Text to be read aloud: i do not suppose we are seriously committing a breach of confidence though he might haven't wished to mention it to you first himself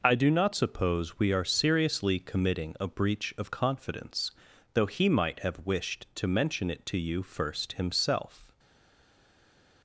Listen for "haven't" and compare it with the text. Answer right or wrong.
wrong